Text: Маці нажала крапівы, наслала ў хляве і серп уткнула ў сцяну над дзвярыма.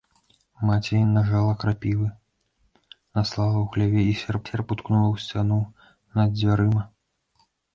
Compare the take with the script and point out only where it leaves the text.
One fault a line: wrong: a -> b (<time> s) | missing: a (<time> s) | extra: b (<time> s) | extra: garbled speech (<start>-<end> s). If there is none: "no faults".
extra: серп (4.5 s)